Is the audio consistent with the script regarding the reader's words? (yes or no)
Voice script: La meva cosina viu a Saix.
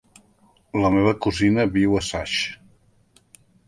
yes